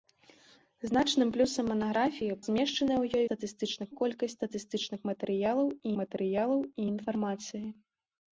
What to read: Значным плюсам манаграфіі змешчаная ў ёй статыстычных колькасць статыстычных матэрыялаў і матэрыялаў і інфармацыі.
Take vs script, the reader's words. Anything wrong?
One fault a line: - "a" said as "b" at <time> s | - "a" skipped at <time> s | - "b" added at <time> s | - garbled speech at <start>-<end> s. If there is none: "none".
none